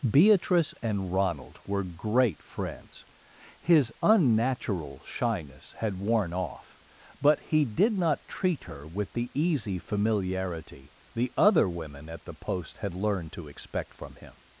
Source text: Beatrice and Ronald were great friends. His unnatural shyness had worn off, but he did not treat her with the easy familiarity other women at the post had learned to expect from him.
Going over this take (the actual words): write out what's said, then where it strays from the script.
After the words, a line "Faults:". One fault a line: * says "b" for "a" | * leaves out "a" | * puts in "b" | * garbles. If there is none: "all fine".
Beatrice and Ronald were great friends. His unnatural shyness had worn off, but he did not treat her with the easy familiarity the other women at the post had learned to expect from him.
Faults:
* puts in "the"